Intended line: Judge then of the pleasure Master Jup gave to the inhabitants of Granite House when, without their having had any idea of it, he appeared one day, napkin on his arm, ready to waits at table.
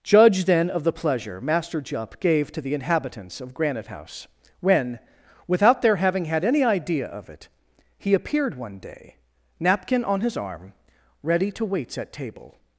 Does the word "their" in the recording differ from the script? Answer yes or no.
no